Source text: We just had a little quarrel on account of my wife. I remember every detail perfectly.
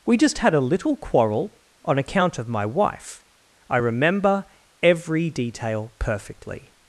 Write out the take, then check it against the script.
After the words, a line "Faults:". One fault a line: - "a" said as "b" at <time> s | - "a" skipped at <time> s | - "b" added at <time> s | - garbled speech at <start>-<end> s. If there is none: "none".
We just had a little quarrel on account of my wife. I remember every detail perfectly.
Faults:
none